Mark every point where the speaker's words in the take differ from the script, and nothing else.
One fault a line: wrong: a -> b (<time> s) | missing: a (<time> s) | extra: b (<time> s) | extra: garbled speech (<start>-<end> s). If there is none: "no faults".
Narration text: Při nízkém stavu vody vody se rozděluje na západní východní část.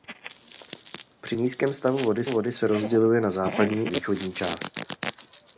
no faults